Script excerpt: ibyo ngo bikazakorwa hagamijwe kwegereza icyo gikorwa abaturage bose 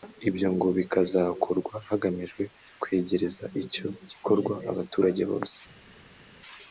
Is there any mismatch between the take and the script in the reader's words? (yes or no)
no